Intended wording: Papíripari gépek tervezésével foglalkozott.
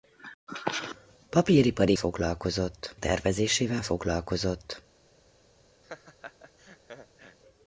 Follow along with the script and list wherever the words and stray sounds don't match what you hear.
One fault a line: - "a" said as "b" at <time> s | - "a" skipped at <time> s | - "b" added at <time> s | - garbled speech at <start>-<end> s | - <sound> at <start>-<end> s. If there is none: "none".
- "gépek" said as "foglalkozott" at 1.9 s
- laugh at 5.8-7.4 s